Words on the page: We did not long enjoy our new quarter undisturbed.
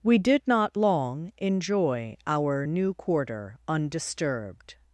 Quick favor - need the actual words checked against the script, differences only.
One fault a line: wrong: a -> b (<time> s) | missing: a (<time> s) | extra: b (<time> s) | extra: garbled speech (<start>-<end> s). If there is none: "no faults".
no faults